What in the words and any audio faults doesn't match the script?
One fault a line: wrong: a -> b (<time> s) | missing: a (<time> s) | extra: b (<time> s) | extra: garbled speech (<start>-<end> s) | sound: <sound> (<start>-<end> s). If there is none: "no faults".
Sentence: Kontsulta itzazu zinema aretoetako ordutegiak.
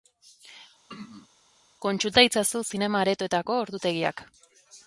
sound: throat clearing (0.9-1.3 s)